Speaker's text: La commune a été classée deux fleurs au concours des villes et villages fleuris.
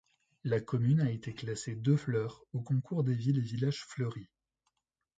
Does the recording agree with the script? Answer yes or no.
yes